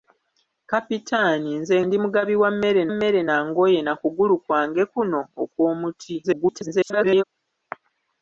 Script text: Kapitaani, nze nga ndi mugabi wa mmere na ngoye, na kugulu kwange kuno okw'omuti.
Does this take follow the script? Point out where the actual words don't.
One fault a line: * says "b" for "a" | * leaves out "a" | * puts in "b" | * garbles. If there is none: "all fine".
* leaves out "nga"
* puts in "mmere"
* garbles